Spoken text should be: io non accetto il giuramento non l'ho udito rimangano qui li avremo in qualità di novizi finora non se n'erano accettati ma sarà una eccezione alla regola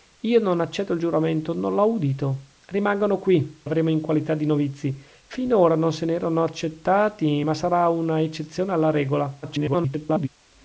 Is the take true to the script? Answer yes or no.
no